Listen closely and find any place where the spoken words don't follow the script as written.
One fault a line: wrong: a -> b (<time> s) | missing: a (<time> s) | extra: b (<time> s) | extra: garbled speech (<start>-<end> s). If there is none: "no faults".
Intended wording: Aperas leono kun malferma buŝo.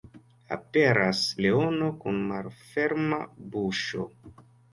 no faults